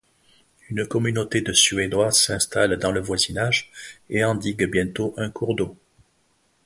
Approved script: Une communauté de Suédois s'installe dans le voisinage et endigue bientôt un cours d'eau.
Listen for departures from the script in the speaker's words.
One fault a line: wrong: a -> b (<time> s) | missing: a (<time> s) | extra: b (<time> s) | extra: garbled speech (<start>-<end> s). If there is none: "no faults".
no faults